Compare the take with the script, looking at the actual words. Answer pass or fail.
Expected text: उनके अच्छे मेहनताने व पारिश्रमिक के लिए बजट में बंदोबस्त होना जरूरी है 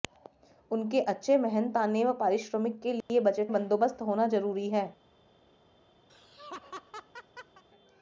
fail